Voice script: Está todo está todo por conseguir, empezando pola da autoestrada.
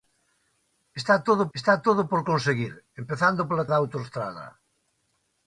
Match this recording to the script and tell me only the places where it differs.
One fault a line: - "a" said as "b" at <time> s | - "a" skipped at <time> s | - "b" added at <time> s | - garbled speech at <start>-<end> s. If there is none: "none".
none